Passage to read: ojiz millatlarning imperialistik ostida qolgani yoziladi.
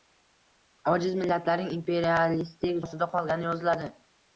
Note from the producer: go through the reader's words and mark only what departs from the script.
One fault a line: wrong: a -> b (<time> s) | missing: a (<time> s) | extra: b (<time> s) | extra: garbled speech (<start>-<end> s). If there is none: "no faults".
no faults